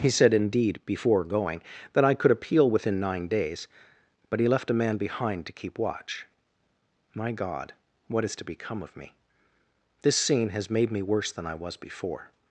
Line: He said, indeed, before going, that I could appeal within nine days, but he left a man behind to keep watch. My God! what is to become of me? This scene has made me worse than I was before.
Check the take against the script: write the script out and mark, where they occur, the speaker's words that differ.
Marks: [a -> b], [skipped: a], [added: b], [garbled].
He said, indeed, before going, that I could appeal within nine days, but he left a man behind to keep watch. My God! what is to become of me? This scene has made me worse than I was before.